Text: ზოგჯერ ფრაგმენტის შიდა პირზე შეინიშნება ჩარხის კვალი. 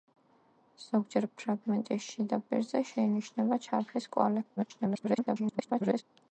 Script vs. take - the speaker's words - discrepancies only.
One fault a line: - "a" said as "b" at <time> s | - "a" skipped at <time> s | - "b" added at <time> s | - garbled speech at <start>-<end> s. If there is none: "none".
- garbled speech at 4.6-6.0 s